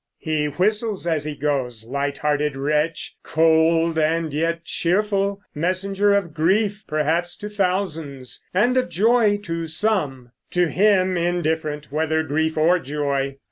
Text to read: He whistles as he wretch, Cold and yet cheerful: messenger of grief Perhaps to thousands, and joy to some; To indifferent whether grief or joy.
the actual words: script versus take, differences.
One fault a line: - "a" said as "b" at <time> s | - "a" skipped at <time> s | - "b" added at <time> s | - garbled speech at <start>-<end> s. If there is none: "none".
- "goes light hearted" added at 1.4 s
- "of" added at 8.8 s
- "him" added at 10.7 s